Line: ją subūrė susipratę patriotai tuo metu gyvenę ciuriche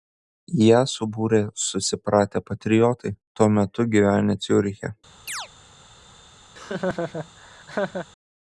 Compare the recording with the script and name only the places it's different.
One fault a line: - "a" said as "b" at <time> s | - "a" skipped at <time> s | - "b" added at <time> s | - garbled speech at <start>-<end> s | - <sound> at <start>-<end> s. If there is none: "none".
- chirp at 5.3-5.5 s
- laugh at 6.5-8.1 s